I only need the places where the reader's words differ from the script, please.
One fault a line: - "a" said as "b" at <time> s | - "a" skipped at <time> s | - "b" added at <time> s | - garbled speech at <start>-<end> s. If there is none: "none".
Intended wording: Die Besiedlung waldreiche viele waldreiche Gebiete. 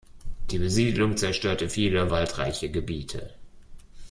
- "waldreiche" said as "zerstörte" at 1.1 s